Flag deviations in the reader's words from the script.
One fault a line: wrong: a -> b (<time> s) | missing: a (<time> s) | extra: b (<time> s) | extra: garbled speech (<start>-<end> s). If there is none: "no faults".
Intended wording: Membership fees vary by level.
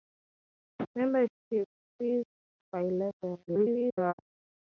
missing: vary (2.2 s)
extra: garbled speech (3.5-4.1 s)